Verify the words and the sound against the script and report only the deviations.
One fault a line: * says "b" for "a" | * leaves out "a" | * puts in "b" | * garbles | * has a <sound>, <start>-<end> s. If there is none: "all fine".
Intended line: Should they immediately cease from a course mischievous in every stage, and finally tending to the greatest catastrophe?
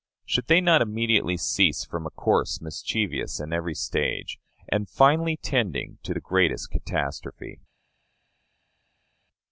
* puts in "not"